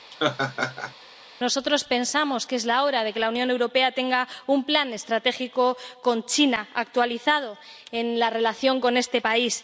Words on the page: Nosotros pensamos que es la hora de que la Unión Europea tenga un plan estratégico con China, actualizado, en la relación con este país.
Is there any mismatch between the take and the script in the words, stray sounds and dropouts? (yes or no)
yes